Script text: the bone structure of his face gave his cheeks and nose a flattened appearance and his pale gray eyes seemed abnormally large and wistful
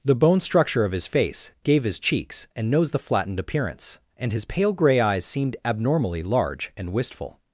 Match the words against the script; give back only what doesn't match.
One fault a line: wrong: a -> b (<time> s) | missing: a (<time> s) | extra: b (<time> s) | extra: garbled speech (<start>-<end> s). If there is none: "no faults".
wrong: a -> the (2.9 s)